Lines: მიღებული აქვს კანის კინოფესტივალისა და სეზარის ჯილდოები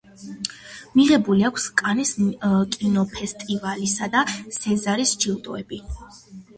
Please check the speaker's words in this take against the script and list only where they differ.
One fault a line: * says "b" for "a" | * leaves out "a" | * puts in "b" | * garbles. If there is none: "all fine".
all fine